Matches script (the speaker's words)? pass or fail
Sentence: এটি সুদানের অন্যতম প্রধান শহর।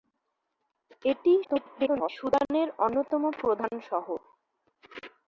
fail